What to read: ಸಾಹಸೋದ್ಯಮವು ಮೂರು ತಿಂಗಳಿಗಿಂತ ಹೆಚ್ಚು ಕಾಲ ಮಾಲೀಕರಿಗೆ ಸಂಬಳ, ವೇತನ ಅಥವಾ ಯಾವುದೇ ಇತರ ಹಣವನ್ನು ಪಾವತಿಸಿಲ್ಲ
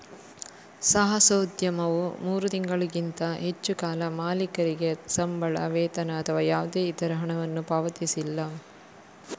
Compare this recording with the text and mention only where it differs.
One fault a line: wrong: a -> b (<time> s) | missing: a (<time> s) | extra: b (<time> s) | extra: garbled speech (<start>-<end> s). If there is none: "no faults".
no faults